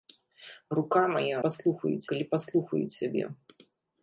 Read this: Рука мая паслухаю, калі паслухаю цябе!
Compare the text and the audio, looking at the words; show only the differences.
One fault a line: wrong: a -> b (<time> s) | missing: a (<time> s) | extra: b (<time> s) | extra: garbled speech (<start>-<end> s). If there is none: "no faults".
no faults